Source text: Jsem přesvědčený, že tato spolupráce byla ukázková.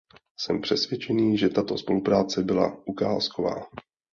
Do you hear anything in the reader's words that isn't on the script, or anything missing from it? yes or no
no